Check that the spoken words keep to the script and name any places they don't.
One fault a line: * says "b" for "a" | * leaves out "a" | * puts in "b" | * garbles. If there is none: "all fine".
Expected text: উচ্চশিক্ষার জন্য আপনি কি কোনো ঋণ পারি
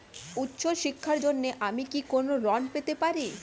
* says "আমি" for "আপনি"
* puts in "পেতে"